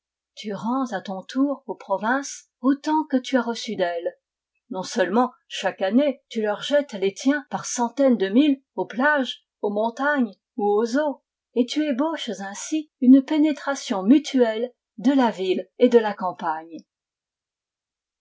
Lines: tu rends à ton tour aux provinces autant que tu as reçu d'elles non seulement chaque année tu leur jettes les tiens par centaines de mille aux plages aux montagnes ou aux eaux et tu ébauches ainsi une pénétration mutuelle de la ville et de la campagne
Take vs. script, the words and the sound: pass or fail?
pass